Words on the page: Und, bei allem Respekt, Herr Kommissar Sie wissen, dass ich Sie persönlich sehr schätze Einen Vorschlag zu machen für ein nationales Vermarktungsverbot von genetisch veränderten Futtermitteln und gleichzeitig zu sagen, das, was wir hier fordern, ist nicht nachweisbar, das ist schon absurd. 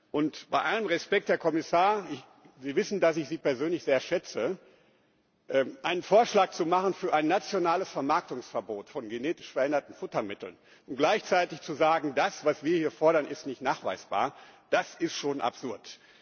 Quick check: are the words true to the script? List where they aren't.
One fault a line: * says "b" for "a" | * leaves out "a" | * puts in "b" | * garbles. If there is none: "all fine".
all fine